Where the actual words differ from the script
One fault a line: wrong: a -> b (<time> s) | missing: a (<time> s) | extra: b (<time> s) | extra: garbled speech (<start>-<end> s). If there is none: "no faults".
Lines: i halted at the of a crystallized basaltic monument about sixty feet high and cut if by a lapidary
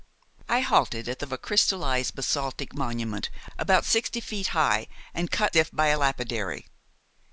no faults